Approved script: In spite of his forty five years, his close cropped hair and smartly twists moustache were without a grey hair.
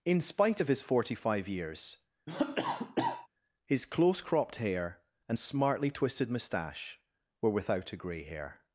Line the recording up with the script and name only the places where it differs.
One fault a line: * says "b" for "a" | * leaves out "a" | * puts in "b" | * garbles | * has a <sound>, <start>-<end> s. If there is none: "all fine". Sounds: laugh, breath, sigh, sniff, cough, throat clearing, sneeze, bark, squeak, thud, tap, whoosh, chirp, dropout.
* has a cough, 2.3-3.3 s
* says "twisted" for "twists"